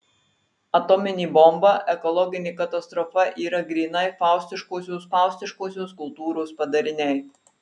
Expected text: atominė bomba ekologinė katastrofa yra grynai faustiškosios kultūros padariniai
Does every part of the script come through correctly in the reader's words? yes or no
no